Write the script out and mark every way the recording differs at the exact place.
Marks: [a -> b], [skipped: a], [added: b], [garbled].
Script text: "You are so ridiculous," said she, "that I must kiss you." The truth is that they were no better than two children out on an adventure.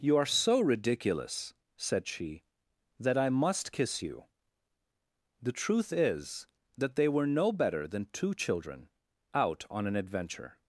"You are so ridiculous," said she, "that I must kiss you." The truth is that they were no better than two children out on an adventure.